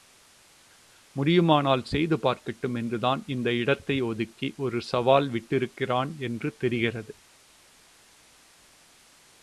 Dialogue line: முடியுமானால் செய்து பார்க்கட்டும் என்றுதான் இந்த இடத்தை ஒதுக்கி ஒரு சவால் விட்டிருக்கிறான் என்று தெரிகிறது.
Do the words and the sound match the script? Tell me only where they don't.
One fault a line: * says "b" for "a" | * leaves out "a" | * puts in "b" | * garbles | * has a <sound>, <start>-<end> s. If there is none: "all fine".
all fine